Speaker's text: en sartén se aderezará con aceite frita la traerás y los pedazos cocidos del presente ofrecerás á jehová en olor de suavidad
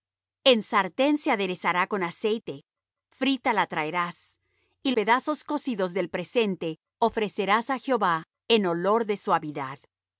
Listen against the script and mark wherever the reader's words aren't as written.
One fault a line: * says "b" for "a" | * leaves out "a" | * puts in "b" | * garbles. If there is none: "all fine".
* leaves out "los"